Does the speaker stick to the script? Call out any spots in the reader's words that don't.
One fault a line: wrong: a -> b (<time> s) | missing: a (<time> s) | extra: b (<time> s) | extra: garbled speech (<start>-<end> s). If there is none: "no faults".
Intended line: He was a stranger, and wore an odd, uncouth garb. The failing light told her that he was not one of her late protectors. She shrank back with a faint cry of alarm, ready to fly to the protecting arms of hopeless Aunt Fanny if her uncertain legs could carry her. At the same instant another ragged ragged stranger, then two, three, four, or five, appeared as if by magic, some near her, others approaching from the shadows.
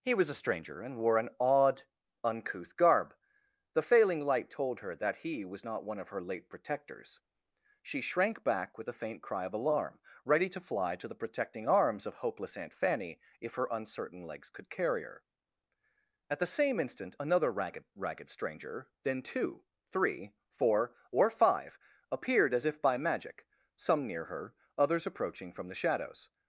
no faults